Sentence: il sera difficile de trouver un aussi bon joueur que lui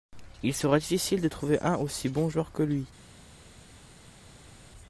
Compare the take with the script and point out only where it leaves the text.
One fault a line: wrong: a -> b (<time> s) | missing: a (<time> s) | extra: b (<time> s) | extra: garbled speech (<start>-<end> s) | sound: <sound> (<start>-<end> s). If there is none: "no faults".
no faults